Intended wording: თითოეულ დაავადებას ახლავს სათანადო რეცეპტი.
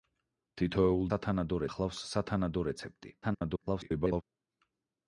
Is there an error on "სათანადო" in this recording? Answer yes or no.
no